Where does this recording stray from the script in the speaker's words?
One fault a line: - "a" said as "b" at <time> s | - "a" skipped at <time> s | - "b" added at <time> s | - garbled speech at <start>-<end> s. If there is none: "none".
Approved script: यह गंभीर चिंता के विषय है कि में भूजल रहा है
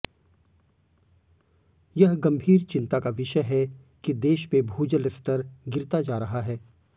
- "के" said as "का" at 3.0 s
- "देश" added at 4.2 s
- "स्तर गिरता जा" added at 5.1 s